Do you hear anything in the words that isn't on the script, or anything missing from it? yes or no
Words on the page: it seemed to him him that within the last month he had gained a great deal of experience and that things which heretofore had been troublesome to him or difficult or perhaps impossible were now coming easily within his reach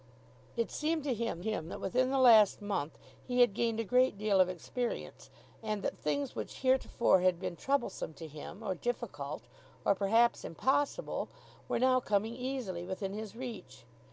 no